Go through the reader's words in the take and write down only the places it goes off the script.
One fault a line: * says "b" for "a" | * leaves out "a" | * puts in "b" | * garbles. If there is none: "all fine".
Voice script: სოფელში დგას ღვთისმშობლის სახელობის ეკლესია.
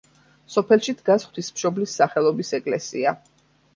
all fine